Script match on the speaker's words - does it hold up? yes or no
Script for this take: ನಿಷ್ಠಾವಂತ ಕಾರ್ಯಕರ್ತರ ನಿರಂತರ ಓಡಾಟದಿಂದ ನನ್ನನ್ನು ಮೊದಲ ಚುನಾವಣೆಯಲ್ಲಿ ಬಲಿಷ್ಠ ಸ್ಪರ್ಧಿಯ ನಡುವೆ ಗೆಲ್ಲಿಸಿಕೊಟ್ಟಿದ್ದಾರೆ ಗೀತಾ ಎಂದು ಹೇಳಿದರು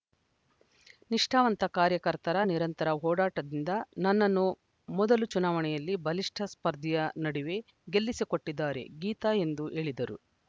yes